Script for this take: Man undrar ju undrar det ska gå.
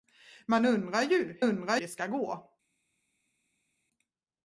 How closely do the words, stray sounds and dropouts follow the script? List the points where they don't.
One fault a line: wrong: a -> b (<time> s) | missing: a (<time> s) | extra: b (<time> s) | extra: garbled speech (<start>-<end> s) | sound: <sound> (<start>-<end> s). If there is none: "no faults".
no faults